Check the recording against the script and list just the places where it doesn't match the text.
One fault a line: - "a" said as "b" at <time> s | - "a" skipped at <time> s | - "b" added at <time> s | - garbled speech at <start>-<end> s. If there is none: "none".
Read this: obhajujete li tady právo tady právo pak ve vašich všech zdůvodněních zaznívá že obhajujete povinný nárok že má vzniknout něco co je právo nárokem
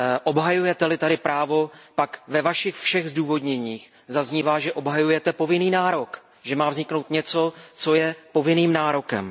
- "tady právo" skipped at 1.7 s
- "právo" said as "povinným" at 8.3 s